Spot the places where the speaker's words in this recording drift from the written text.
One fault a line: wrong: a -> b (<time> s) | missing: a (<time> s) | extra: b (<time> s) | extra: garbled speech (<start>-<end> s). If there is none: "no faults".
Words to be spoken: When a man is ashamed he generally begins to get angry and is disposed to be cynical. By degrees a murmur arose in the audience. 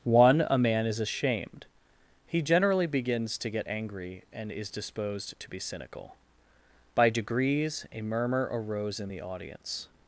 wrong: When -> One (0.0 s)